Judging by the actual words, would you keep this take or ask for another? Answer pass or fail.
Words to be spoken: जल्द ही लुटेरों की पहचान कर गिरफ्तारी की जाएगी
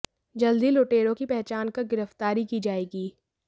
pass